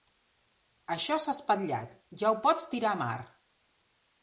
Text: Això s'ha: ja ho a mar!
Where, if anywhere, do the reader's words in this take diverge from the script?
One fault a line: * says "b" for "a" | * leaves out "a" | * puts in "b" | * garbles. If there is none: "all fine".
* puts in "espatllat"
* puts in "pots tirar"